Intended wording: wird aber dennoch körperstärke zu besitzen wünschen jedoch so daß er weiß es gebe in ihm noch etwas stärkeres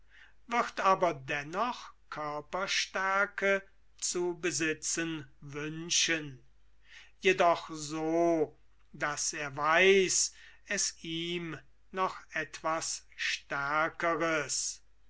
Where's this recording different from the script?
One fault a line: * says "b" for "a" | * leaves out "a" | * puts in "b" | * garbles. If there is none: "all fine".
* leaves out "gebe in"